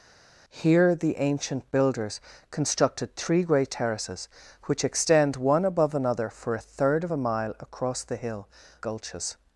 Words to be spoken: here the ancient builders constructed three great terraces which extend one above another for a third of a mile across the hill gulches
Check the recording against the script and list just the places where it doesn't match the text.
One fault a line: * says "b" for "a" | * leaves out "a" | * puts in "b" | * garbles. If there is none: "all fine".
all fine